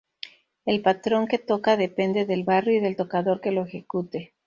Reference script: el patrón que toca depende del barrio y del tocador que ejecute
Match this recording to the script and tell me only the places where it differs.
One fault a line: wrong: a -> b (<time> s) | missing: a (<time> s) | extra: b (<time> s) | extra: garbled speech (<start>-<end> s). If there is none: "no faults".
extra: lo (3.5 s)